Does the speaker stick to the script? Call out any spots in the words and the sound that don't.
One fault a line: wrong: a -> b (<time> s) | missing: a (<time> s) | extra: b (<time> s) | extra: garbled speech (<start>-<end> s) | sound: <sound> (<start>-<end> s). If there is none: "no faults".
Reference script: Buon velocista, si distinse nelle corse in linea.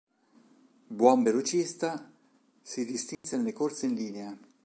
sound: dropout (3.1-3.2 s)